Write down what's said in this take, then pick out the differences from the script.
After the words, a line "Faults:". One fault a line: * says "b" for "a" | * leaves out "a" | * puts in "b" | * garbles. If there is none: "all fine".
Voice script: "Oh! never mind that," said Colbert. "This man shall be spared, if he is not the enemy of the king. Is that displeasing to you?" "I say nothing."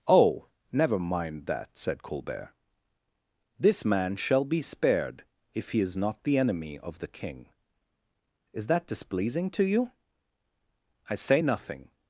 "Oh! never mind that," said Colbert. "This man shall be spared, if he is not the enemy of the king. Is that displeasing to you?" "I say nothing."
Faults:
all fine